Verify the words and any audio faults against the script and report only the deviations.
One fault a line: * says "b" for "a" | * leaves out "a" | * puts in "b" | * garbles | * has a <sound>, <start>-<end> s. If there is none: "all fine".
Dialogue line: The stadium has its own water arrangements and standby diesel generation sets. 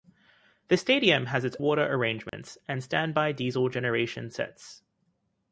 * leaves out "own"
* has a dropout, 2.3-2.3 s